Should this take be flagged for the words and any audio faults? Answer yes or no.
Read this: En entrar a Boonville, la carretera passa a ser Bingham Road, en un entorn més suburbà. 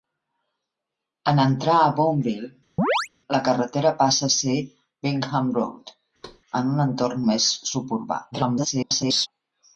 yes